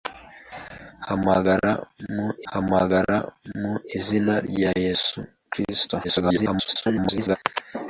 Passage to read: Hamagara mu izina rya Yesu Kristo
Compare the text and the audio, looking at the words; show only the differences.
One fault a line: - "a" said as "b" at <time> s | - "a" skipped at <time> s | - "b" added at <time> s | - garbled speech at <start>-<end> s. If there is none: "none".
- "hamagara mu" added at 2.5 s
- garbled speech at 6.0-7.4 s